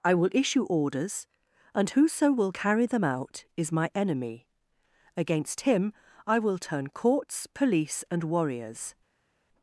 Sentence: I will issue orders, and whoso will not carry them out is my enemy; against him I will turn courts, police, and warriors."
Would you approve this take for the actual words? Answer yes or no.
no